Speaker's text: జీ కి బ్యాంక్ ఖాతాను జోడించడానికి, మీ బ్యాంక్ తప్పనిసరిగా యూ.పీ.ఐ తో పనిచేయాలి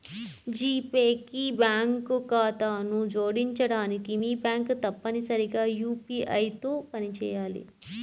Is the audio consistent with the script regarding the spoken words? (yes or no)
no